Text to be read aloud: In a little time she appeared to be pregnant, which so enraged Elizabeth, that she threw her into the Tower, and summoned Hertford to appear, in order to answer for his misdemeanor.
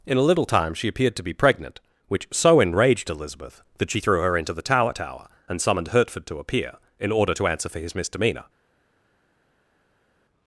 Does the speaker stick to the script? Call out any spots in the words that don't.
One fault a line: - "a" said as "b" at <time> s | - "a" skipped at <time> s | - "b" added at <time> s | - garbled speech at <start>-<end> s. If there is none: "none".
- "Tower" added at 4.9 s